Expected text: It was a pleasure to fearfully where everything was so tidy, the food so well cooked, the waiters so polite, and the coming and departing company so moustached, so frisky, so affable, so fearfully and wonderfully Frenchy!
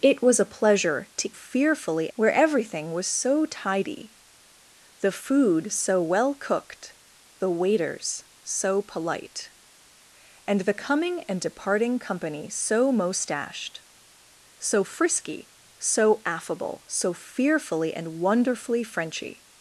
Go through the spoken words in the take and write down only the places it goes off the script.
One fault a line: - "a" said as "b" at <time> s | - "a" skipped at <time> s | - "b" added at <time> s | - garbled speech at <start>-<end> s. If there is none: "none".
none